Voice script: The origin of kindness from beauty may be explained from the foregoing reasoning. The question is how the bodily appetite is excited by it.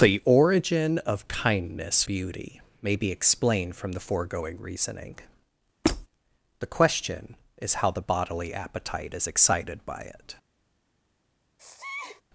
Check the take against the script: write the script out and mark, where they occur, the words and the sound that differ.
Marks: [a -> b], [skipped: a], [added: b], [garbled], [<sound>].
The origin of kindness [skipped: from] beauty may be explained from the foregoing reasoning. [squeak] The question is how the bodily appetite is excited by it. [sneeze]